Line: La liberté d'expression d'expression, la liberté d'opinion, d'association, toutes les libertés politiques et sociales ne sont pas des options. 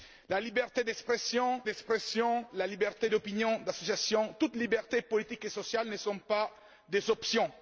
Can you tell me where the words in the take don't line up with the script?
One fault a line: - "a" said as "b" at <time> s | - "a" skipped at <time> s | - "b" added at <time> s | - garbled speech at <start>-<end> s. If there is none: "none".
none